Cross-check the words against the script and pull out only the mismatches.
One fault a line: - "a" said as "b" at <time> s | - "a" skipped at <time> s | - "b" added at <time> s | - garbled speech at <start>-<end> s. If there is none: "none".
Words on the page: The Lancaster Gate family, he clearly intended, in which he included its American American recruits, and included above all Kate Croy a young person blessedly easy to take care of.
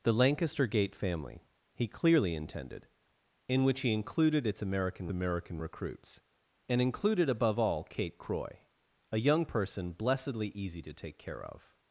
none